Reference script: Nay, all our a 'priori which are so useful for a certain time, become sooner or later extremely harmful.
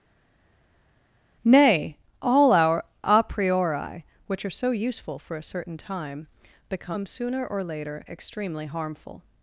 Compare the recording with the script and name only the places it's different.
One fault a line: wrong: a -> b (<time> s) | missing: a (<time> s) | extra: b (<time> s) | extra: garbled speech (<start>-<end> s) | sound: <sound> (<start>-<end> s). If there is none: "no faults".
no faults